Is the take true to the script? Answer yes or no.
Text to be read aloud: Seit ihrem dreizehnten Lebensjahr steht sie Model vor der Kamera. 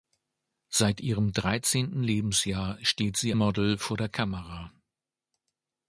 yes